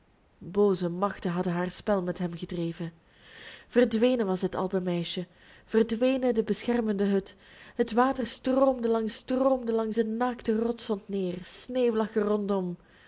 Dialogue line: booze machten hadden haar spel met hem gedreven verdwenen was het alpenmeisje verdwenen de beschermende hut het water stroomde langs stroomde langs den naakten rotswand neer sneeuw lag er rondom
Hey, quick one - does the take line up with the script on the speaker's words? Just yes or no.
yes